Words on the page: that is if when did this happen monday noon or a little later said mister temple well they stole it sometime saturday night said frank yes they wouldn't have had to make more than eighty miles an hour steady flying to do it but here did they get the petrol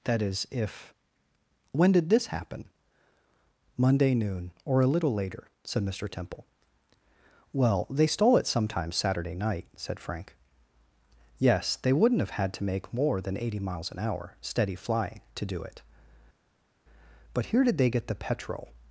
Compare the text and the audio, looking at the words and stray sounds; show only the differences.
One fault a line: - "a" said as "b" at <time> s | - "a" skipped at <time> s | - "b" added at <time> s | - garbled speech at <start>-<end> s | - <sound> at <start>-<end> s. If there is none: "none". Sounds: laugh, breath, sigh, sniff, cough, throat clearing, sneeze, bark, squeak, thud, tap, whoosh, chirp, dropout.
none